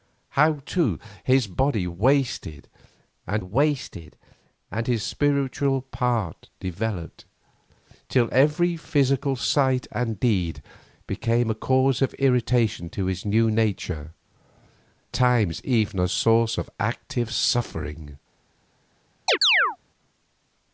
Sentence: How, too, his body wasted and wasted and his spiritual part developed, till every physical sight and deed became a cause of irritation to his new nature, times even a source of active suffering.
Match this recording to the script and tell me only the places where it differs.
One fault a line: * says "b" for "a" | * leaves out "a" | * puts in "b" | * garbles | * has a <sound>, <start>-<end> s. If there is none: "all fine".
* has a chirp, 19.3-19.8 s